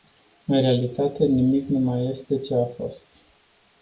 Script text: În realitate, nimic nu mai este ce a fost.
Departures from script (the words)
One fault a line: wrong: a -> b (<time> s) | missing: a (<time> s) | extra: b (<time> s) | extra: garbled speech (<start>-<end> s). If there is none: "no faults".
no faults